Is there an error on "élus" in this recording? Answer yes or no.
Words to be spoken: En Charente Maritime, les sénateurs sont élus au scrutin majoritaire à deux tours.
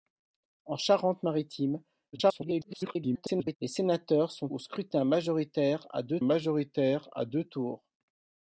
yes